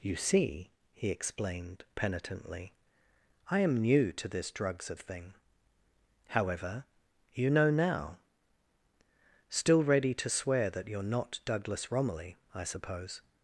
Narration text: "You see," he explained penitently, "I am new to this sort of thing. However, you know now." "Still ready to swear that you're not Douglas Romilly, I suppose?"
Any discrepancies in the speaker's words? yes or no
yes